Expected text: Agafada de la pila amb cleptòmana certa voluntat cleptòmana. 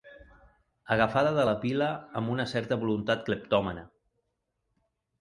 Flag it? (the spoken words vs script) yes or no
yes